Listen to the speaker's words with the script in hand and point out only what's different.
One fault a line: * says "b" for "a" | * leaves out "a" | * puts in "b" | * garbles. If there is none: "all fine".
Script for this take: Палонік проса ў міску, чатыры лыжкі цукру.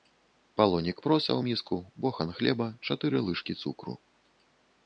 * puts in "бохан хлеба"